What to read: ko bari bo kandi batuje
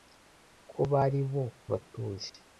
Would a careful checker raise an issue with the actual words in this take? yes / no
yes